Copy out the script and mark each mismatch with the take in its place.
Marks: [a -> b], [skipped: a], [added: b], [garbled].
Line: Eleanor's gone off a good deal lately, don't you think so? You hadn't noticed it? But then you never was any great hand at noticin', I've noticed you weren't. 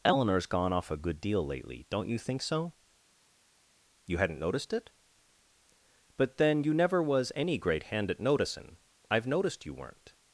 Eleanor's gone off a good deal lately, don't you think so? You hadn't noticed it? But then you never was any great hand at noticin', I've noticed you weren't.